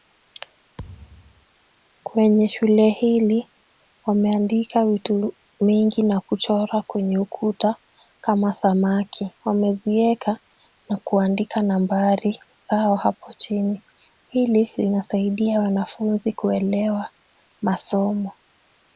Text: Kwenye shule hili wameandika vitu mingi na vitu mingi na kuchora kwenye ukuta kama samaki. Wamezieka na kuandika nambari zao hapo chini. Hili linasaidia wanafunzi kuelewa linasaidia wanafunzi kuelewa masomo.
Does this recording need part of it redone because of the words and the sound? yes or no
yes